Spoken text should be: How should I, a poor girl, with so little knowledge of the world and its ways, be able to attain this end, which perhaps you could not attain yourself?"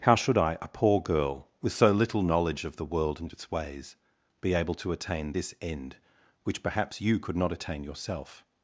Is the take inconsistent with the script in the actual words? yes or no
no